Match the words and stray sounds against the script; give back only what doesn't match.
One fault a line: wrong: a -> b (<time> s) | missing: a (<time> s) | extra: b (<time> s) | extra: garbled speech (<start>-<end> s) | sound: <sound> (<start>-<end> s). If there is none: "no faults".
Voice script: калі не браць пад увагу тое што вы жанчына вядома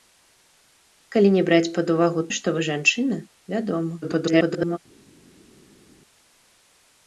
missing: тое (2.2 s)
extra: garbled speech (4.0-4.8 s)